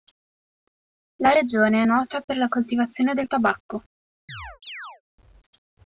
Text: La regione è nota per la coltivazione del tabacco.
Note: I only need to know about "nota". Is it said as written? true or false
true